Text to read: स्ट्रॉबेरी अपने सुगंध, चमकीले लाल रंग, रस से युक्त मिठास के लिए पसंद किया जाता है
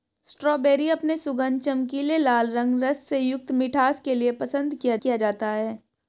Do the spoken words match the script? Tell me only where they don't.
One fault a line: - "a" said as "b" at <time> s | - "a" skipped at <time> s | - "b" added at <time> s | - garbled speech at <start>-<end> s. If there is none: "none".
- "किया" added at 5.0 s